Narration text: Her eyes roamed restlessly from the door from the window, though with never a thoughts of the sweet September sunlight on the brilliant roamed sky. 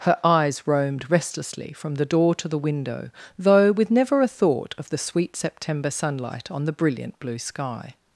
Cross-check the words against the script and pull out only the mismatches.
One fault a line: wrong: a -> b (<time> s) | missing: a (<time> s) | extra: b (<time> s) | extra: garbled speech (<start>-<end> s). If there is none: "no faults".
wrong: from -> to (2.4 s)
wrong: thoughts -> thought (4.3 s)
wrong: roamed -> blue (7.2 s)